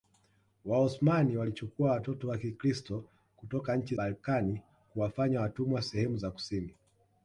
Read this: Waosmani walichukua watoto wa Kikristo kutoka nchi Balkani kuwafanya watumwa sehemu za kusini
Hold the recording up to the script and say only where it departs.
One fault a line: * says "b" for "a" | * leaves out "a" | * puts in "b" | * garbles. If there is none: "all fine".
all fine